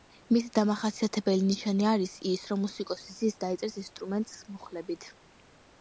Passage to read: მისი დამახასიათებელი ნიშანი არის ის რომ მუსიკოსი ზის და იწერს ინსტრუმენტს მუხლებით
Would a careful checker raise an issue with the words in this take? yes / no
no